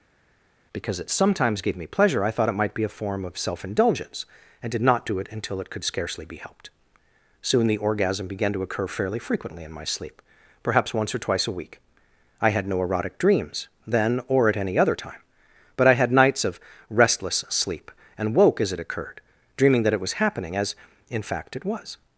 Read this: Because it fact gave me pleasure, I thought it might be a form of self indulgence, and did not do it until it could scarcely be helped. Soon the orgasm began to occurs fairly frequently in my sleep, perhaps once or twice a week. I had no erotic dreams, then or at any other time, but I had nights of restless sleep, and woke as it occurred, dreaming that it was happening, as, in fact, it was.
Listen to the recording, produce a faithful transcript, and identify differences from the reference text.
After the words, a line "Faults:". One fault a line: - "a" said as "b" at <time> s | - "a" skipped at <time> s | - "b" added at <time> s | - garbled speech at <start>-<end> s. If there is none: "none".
Because it sometimes gave me pleasure, I thought it might be a form of self indulgence, and did not do it until it could scarcely be helped. Soon the orgasm began to occur fairly frequently in my sleep, perhaps once or twice a week. I had no erotic dreams, then or at any other time, but I had nights of restless sleep, and woke as it occurred, dreaming that it was happening, as, in fact, it was.
Faults:
- "fact" said as "sometimes" at 1.1 s
- "occurs" said as "occur" at 8.6 s